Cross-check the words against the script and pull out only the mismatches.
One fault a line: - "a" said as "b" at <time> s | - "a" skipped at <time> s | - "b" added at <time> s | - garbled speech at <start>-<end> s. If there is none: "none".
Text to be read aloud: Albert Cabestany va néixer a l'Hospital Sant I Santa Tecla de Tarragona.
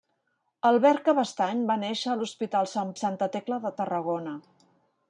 none